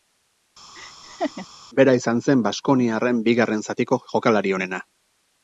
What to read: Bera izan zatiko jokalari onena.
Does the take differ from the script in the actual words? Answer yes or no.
yes